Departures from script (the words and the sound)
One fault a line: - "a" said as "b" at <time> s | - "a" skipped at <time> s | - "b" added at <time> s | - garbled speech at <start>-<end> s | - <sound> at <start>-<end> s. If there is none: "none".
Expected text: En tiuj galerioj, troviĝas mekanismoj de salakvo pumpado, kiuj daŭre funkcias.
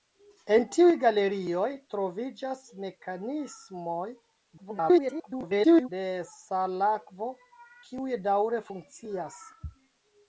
- garbled speech at 4.6-5.9 s
- "pumpado" skipped at 7.3 s